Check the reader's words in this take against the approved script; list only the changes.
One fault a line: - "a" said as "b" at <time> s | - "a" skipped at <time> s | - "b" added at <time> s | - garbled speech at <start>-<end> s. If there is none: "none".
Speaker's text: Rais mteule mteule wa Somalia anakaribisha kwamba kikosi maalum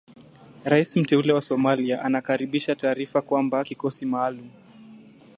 - "mteule" skipped at 1.3 s
- "taarifa" added at 2.8 s